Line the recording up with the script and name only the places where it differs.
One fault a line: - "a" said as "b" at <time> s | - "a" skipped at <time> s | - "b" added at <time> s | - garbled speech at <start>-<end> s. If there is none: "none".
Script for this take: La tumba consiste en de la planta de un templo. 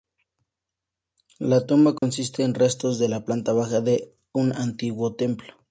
- "restos" added at 2.5 s
- "baja" added at 3.5 s
- "antiguo" added at 4.5 s